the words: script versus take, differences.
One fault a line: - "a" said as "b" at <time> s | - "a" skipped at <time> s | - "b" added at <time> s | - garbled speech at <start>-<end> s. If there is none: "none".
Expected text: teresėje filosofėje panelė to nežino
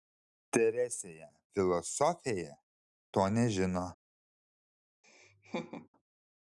- "panelė" skipped at 2.5 s